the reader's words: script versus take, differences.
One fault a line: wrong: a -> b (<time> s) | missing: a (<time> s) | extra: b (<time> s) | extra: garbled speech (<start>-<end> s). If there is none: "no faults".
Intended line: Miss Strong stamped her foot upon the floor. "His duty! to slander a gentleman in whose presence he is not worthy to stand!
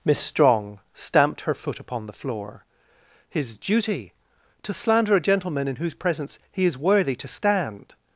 missing: not (6.8 s)